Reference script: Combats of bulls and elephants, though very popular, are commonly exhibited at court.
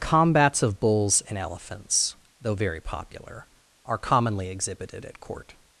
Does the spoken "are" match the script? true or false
true